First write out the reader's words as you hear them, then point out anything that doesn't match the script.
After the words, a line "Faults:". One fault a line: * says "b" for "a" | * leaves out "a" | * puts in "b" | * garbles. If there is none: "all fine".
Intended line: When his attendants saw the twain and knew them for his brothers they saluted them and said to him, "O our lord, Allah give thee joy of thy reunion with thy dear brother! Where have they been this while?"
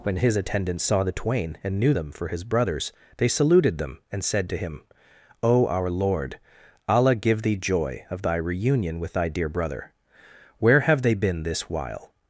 When his attendants saw the twain and knew them for his brothers they saluted them and said to him, "O our lord, Allah give thee joy of thy reunion with thy dear brother! Where have they been this while?"
Faults:
all fine